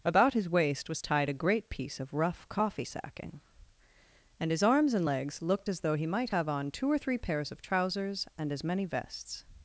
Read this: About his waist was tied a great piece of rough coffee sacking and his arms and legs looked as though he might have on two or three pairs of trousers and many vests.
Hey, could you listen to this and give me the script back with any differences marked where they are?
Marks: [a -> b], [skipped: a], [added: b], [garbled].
About his waist was tied a great piece of rough coffee sacking and his arms and legs looked as though he might have on two or three pairs of trousers and [added: as] many vests.